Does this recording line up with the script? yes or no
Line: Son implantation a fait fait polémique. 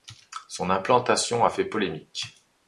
no